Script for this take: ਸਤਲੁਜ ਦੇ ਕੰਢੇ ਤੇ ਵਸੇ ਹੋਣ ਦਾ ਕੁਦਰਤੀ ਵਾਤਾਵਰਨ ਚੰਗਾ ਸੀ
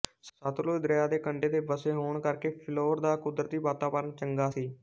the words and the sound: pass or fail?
fail